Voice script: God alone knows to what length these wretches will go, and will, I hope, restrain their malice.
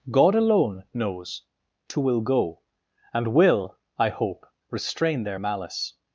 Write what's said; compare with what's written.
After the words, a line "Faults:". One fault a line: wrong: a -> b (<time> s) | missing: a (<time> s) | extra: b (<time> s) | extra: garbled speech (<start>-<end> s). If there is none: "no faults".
God alone knows to will go, and will, I hope, restrain their malice.
Faults:
missing: what length these wretches (2.0 s)